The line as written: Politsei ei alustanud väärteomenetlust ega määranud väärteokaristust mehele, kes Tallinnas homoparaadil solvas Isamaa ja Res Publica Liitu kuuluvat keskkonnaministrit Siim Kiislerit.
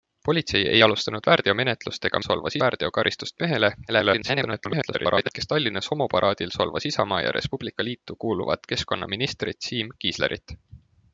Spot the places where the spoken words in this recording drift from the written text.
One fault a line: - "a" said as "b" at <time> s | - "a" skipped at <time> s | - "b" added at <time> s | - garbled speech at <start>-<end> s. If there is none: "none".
- "määranud" said as "solvas" at 2.3 s
- garbled speech at 3.9-5.3 s